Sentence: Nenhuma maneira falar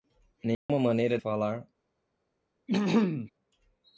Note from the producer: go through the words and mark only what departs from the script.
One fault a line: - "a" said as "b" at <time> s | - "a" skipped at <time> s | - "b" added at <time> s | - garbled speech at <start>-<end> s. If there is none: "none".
none